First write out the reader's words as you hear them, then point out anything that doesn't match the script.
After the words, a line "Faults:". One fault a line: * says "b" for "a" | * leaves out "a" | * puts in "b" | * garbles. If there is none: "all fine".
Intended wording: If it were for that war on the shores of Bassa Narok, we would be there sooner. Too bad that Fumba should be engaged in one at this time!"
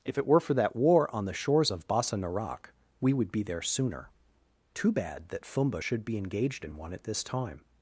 If it were for that war on the shores of Bassa Narok, we would be there sooner. Too bad that Fumba should be engaged in one at this time!"
Faults:
all fine